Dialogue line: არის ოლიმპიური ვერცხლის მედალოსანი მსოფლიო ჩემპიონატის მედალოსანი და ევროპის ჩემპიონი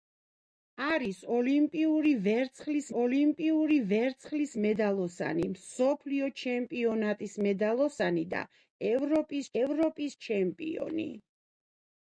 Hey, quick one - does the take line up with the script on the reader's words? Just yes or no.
no